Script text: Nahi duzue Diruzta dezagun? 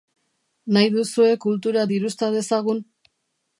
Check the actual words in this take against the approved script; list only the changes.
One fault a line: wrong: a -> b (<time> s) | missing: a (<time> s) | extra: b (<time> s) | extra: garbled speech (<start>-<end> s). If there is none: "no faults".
extra: Kultura (1.4 s)